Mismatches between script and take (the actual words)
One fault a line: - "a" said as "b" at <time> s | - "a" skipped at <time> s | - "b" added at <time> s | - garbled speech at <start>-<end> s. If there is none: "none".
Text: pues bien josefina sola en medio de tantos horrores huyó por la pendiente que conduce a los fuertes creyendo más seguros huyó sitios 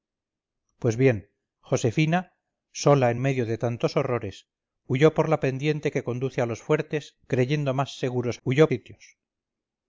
none